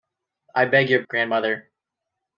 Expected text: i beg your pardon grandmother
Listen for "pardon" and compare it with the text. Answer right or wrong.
wrong